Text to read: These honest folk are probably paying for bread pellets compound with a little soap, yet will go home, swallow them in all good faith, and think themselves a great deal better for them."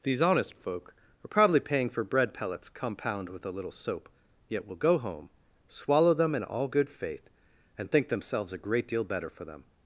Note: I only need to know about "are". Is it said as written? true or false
true